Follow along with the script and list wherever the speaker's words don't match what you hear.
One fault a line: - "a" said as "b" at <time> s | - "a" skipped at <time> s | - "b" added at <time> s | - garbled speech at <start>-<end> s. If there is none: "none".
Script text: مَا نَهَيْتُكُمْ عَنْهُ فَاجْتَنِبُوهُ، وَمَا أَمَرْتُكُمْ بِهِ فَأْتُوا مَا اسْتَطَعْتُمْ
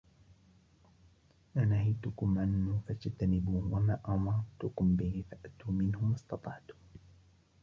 - "مِنْهُ" added at 5.7 s